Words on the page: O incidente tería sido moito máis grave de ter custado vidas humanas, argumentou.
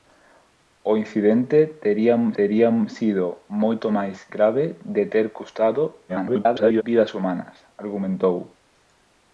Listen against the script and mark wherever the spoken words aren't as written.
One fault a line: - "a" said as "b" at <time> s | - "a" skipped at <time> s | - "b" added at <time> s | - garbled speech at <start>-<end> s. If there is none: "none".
- "tería" added at 2.4 s
- garbled speech at 6.1-6.8 s